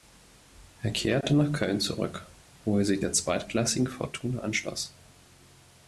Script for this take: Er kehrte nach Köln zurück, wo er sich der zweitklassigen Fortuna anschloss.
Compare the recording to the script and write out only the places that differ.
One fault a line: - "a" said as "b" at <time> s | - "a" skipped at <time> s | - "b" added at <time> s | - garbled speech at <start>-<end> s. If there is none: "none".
none